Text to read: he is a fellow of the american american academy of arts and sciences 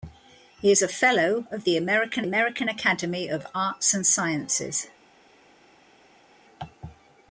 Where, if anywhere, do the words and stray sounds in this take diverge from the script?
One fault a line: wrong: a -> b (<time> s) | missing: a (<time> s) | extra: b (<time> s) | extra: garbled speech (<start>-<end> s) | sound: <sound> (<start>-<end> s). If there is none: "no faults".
no faults